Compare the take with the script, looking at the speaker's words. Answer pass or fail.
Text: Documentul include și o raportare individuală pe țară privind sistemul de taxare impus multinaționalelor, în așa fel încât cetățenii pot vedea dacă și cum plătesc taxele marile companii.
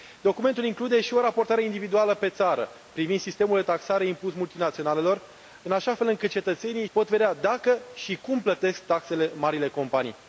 pass